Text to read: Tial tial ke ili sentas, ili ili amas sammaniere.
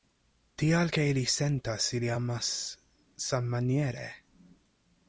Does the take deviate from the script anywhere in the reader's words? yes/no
yes